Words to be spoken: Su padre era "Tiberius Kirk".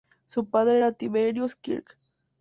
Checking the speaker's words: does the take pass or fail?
pass